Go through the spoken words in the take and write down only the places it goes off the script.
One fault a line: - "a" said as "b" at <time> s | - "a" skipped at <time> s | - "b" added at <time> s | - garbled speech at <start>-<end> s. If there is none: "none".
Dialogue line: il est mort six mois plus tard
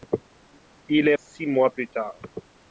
- "mort" skipped at 1.1 s